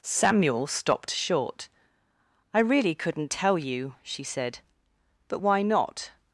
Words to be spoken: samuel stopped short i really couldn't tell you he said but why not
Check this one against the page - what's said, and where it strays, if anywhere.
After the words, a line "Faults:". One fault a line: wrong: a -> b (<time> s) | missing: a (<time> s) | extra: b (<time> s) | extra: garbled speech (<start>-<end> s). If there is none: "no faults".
samuel stopped short i really couldn't tell you she said but why not
Faults:
wrong: he -> she (4.0 s)